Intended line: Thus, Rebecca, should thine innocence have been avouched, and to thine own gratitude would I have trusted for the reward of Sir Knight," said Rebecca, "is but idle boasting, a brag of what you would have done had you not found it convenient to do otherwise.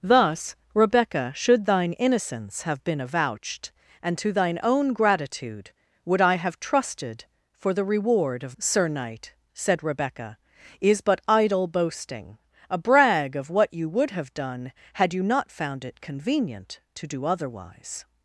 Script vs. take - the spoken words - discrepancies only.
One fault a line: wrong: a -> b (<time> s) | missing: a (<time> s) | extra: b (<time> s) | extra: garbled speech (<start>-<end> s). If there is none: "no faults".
no faults